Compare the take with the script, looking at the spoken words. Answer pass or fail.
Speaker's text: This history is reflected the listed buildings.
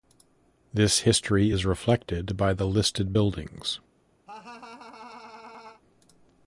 fail